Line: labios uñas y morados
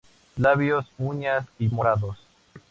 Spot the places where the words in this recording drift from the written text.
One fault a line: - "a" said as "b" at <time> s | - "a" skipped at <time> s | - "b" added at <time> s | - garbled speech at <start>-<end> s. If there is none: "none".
none